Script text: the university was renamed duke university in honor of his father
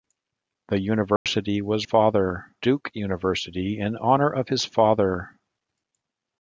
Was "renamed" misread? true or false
true